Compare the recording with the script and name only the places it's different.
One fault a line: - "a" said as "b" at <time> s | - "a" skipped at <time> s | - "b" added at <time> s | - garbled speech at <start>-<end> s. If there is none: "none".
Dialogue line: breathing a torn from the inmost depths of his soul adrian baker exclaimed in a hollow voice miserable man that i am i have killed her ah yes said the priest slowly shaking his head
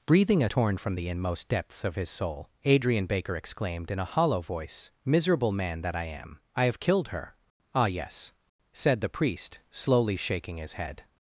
none